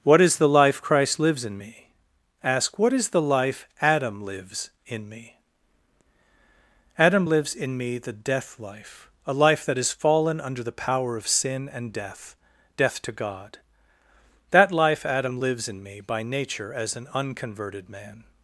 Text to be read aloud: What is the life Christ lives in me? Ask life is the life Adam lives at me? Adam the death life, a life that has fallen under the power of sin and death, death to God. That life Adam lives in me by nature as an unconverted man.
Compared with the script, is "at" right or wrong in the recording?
wrong